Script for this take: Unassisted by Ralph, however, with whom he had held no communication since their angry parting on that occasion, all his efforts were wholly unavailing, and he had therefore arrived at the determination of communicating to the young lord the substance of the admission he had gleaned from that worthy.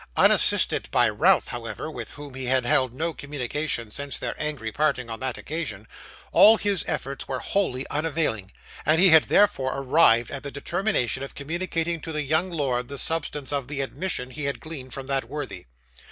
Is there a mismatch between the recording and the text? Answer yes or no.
no